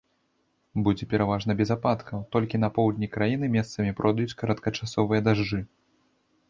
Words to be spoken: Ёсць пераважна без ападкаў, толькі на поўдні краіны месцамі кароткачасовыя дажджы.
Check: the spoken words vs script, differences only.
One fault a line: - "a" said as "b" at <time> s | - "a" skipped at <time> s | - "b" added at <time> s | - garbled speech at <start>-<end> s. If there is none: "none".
- "Ёсць" said as "Будзе" at 0.8 s
- "пройдуць" added at 4.0 s